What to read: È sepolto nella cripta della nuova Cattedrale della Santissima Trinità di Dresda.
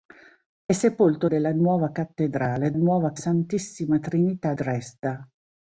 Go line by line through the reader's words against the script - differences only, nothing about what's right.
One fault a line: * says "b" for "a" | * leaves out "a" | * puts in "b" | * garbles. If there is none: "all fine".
* leaves out "nella cripta"
* says "nuova" for "della"
* leaves out "di"